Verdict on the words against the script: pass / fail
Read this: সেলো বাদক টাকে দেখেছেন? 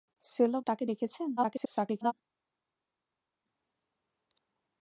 fail